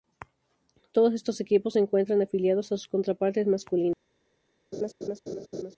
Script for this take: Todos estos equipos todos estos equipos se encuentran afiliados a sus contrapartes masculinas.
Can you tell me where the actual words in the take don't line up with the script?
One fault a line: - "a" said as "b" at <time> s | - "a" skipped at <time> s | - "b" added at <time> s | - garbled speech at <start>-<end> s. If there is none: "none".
- "todos estos equipos" skipped at 1.8 s